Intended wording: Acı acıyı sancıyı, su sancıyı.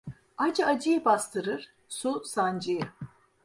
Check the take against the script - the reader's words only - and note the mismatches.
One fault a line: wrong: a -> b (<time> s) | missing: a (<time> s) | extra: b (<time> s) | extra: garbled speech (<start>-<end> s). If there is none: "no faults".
wrong: sancıyı -> bastırır (1.1 s)